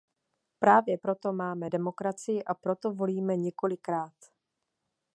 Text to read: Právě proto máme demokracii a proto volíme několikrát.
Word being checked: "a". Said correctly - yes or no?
yes